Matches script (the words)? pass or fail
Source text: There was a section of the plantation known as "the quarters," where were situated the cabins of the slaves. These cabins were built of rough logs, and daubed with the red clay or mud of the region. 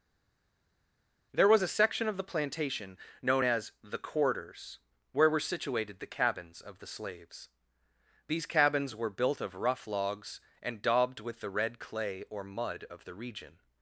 pass